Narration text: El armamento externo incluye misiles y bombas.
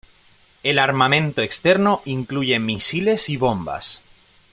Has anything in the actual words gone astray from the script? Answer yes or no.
no